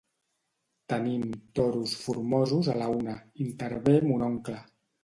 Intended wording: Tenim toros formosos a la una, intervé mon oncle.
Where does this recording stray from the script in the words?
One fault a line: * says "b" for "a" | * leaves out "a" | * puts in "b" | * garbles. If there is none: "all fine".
all fine